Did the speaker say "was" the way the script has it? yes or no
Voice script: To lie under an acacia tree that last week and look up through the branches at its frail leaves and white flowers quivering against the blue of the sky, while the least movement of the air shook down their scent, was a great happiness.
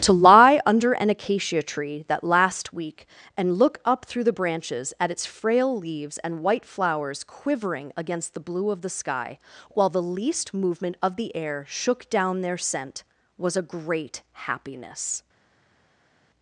yes